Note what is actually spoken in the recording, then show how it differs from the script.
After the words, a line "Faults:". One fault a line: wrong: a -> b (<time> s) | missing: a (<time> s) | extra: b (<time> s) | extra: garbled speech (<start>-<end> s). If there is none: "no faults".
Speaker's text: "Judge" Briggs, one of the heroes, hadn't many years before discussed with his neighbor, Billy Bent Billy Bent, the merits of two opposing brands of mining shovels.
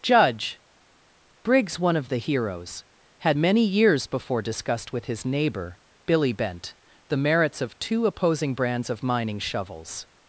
"Judge" Briggs, one of the heroes, had many years before discussed with his neighbor, Billy Bent, the merits of two opposing brands of mining shovels.
Faults:
wrong: hadn't -> had (3.2 s)
missing: Billy Bent (6.7 s)